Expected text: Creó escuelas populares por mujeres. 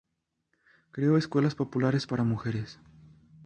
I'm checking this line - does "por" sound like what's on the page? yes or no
no